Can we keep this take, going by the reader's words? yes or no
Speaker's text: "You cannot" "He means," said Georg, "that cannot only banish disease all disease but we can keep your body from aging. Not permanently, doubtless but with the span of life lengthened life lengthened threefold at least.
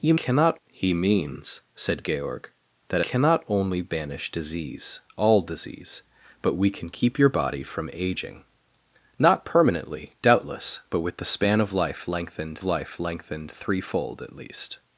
yes